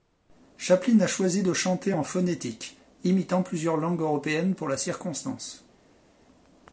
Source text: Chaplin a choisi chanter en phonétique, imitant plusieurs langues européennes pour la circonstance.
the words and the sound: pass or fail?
fail